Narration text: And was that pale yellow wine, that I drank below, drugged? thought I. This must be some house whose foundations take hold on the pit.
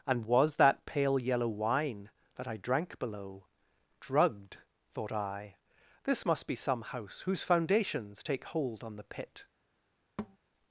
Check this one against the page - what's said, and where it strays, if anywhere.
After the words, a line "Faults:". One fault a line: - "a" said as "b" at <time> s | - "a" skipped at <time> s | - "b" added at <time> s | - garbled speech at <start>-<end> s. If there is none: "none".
And was that pale yellow wine, that I drank below, drugged? thought I. This must be some house whose foundations take hold on the pit.
Faults:
none